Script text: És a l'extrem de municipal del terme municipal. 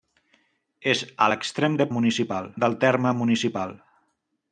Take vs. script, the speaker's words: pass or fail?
pass